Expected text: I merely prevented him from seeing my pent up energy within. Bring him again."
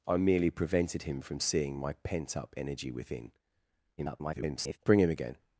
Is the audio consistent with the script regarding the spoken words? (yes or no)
no